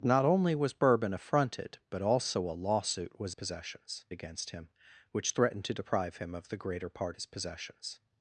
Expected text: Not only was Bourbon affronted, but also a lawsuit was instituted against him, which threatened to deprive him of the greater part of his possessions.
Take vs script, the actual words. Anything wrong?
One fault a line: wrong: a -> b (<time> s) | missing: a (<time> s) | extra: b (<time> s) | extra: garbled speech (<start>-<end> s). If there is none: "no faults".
wrong: instituted -> possessions (3.3 s)
missing: of (7.2 s)